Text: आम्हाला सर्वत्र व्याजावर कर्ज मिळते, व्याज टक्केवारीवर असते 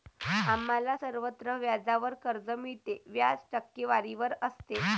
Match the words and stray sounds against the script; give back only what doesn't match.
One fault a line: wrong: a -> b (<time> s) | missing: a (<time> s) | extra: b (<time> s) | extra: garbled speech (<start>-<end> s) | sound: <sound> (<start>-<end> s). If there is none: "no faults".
no faults